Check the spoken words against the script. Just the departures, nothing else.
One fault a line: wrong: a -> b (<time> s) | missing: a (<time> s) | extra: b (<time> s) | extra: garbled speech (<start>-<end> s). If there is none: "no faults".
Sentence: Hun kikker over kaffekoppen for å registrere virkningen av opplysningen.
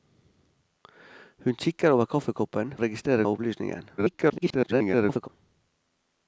missing: for (2.7 s)
missing: virkningen (3.3 s)
extra: garbled speech (4.0-5.3 s)